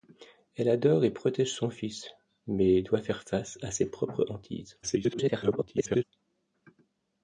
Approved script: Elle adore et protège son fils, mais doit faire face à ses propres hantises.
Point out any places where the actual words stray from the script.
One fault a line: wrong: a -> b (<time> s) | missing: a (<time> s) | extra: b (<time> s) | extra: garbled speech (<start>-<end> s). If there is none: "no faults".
extra: garbled speech (4.8-6.0 s)